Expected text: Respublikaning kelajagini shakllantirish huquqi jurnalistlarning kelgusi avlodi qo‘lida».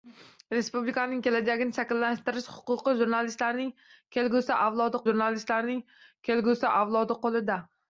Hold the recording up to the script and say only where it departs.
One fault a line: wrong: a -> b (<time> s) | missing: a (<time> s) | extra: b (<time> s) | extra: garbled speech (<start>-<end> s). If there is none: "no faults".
extra: jurnalistlarning kelgusi avlodi (5.1 s)